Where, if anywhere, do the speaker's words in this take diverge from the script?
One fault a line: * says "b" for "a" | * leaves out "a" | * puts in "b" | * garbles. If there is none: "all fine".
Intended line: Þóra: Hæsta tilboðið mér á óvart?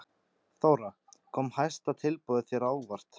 * puts in "Kom"
* says "þér" for "mér"